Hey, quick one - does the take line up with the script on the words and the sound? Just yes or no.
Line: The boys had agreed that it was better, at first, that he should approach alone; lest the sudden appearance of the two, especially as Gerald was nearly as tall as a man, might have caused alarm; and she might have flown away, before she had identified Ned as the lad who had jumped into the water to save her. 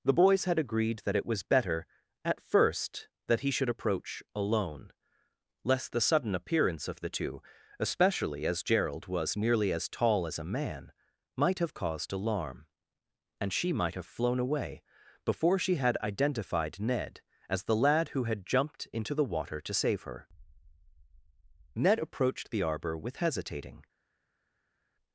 no